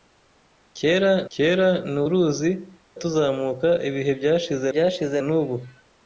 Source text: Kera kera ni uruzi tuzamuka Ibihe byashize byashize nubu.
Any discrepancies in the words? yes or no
no